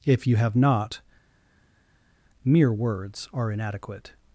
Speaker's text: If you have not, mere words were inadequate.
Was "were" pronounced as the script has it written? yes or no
no